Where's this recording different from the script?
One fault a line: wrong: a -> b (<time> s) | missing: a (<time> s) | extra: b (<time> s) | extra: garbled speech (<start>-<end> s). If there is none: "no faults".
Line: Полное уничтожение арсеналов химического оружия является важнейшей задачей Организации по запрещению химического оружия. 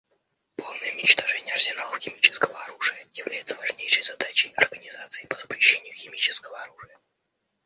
no faults